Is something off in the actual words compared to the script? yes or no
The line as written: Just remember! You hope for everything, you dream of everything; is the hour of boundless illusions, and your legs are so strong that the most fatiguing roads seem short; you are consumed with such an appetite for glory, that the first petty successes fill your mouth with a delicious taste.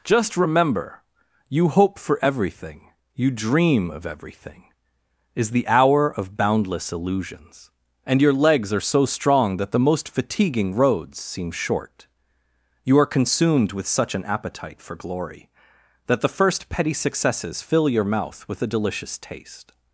no